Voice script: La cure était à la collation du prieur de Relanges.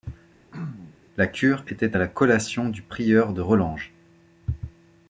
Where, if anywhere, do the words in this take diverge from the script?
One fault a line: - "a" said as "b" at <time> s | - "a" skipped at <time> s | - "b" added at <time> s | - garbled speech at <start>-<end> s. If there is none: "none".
none